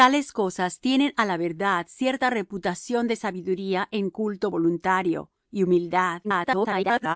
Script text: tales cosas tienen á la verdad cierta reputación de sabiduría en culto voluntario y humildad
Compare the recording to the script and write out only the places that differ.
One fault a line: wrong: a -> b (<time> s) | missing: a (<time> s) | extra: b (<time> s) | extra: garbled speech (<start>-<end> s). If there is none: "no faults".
extra: garbled speech (6.2-7.2 s)